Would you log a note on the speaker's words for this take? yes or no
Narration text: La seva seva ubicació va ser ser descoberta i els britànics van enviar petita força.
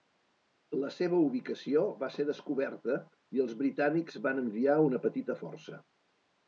yes